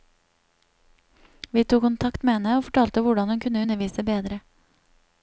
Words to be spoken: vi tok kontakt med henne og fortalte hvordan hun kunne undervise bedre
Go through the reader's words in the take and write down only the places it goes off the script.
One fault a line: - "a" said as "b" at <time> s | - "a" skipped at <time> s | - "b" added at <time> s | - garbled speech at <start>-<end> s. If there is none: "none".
none